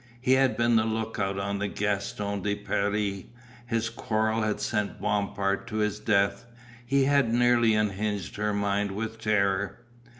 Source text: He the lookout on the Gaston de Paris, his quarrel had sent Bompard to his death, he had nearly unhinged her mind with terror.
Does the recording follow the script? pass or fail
fail